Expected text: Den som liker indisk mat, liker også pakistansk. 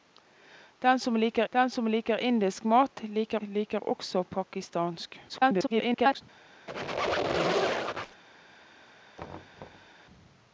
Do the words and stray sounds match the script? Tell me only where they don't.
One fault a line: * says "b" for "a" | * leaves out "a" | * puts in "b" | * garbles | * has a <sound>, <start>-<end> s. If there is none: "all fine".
* puts in "den som liker"
* puts in "liker"
* garbles
* has a squeak, 6.7-8.2 s
* has a thud, 9.2-10.0 s